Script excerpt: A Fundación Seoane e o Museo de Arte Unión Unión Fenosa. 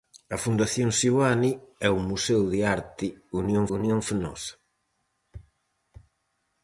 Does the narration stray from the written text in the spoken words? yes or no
no